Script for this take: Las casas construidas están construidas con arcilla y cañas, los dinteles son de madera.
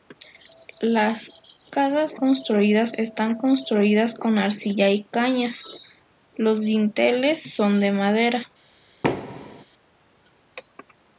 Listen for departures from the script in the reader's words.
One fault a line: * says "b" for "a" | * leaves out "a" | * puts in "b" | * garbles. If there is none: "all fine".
all fine